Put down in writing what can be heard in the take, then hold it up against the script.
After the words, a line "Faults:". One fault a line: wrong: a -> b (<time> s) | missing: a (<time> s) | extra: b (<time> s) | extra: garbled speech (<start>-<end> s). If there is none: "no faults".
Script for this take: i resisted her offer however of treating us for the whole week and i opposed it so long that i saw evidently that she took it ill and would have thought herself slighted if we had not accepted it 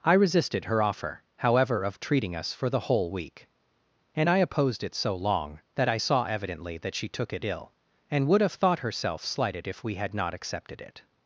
i resisted her offer however of treating us for the whole week and i opposed it so long that i saw evidently that she took it ill and would have thought herself slighted if we had not accepted it
Faults:
no faults